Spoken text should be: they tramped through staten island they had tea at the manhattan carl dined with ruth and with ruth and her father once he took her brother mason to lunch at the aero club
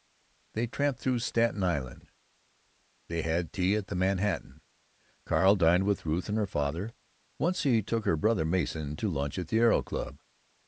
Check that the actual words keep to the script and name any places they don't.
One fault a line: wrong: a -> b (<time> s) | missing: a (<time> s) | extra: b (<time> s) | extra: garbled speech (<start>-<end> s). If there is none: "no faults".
missing: with ruth and (6.4 s)